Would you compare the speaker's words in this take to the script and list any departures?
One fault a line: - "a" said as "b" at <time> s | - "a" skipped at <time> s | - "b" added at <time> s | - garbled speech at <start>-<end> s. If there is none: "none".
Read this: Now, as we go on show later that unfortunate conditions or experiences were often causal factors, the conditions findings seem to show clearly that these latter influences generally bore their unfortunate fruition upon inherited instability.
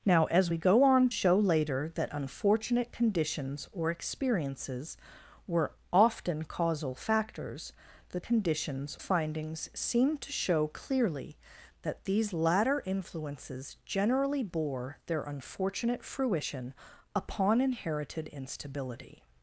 none